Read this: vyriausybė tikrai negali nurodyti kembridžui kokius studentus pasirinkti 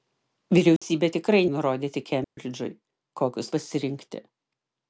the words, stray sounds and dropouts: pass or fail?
fail